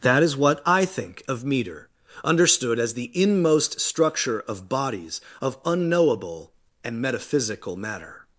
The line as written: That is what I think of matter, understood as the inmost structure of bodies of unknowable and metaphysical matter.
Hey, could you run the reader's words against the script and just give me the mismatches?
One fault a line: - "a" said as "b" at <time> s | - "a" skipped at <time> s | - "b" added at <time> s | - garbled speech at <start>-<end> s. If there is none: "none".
- "matter" said as "meter" at 1.4 s